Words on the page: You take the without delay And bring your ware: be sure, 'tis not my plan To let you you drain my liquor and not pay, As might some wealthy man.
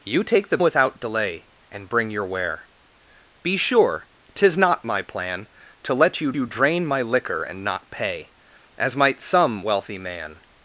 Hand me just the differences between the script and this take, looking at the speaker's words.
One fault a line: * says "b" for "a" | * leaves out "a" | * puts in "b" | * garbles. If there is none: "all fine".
all fine